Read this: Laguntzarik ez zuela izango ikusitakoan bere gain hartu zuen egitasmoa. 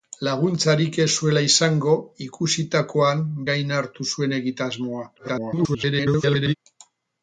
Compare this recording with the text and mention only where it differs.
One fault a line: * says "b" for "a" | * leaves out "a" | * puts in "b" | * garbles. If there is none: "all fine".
* leaves out "bere"
* garbles